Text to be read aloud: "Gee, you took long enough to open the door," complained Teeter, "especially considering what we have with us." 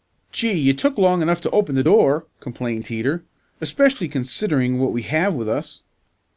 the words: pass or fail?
pass